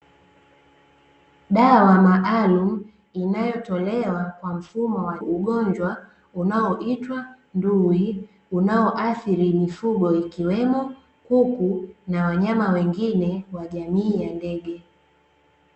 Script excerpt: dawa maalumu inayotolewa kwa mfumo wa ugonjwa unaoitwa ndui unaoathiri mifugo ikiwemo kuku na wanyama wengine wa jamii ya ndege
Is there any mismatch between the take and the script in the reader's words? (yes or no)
no